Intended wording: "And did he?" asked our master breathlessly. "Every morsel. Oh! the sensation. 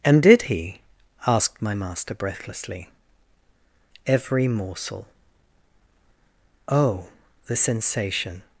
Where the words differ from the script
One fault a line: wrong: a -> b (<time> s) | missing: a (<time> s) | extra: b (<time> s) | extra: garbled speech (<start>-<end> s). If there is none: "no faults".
wrong: our -> my (1.6 s)